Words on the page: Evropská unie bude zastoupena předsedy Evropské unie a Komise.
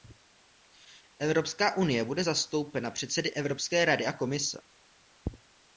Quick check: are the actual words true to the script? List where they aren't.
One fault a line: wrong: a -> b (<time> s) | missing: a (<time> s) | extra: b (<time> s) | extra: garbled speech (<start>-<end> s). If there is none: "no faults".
wrong: unie -> rady (3.8 s)